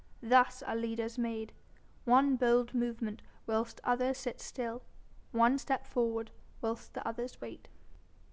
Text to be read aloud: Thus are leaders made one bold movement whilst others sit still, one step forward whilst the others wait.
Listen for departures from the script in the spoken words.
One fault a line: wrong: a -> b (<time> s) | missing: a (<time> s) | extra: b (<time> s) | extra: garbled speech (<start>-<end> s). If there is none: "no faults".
no faults